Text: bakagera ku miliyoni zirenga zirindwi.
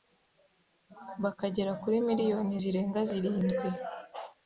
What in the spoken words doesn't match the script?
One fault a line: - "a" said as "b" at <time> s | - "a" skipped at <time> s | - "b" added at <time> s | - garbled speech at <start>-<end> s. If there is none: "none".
- "ku" said as "kuri" at 1.8 s